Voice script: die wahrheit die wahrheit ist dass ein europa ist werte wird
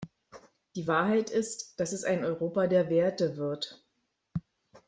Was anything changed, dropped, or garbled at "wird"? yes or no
no